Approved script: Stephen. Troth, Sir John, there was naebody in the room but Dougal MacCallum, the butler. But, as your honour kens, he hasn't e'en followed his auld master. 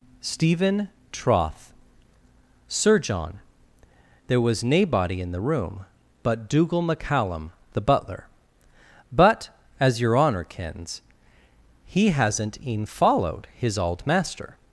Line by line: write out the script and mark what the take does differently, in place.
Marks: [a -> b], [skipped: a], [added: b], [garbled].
Stephen. Troth, Sir John, there was naebody in the room but Dougal MacCallum, the butler. But, as your honour kens, he hasn't e'en followed his auld master.